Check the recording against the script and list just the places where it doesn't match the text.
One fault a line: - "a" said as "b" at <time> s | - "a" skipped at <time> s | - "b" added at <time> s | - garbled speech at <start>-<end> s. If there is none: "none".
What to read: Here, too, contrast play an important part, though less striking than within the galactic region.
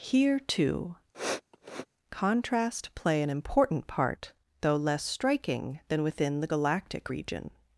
none